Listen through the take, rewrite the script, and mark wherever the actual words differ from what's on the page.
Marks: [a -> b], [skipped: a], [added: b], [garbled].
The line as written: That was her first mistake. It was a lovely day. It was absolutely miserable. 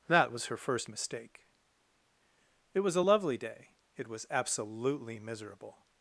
That was her first mistake. It was a lovely day. It was absolutely miserable.